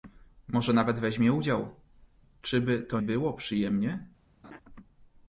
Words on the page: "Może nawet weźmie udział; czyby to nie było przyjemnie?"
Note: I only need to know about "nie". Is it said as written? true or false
false